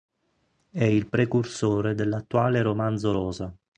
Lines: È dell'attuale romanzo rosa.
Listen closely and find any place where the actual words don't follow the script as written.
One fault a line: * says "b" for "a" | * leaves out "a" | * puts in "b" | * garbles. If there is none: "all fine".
* puts in "il precursore"